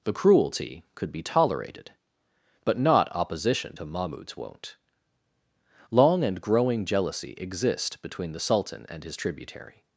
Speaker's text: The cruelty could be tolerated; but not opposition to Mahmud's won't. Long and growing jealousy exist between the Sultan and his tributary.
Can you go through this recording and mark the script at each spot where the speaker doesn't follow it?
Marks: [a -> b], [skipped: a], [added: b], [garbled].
The cruelty could be tolerated; but not opposition to Mahmud's won't. Long and growing jealousy exist between the Sultan and his tributary.